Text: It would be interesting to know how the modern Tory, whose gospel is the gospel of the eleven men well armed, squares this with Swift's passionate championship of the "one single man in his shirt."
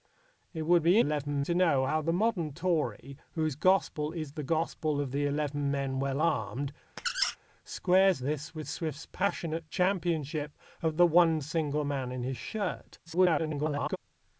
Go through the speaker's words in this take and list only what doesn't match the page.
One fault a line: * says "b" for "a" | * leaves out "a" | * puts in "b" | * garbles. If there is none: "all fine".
* says "eleven" for "interesting"
* garbles